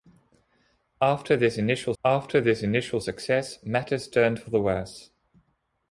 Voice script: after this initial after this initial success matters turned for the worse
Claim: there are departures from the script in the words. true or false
false